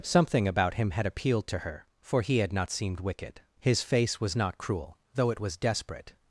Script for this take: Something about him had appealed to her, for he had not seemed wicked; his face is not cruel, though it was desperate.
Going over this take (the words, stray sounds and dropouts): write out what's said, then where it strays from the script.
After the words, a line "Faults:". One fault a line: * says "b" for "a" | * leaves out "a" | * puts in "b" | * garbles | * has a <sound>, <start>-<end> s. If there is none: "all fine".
Something about him had appealed to her, for he had not seemed wicked; his face was not cruel, though it was desperate.
Faults:
* says "was" for "is"